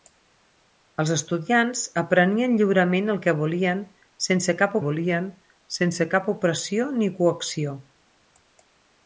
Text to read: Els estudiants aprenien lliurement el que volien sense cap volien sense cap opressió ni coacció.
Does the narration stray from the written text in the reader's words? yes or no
no